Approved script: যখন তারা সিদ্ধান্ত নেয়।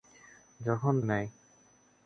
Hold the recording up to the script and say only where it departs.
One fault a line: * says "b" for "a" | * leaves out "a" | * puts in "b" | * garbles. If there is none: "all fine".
* leaves out "তারা সিদ্ধান্ত"